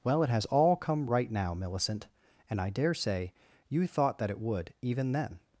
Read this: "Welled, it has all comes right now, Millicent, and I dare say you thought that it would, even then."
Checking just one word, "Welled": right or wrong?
wrong